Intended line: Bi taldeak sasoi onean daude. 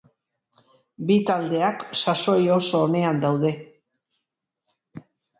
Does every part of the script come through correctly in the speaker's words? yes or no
no